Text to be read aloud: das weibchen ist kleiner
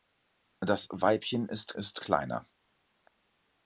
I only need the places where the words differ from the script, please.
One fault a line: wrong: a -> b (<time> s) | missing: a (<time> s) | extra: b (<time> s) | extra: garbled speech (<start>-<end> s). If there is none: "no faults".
extra: ist (1.7 s)